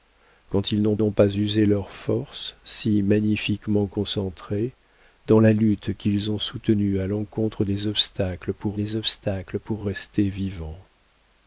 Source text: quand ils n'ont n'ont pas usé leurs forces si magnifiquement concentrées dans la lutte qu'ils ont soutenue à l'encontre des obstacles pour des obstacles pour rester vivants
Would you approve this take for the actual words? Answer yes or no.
yes